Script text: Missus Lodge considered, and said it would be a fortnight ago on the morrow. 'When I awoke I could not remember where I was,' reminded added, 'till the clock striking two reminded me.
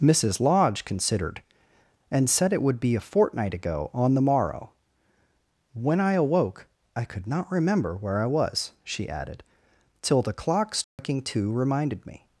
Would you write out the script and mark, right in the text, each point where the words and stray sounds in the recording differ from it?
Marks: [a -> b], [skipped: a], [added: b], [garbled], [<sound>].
Missus Lodge considered, and said it would be a fortnight ago on the morrow. 'When I awoke I could not remember where I was,' [reminded -> she] added, 'till the clock striking [dropout] two reminded me.